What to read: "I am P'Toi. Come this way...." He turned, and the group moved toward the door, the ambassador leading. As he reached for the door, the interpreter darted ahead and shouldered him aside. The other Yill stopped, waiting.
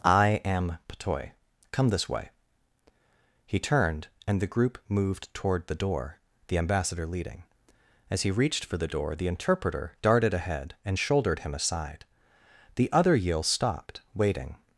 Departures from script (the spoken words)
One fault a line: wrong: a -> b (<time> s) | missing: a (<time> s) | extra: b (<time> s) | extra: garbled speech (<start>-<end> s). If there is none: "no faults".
no faults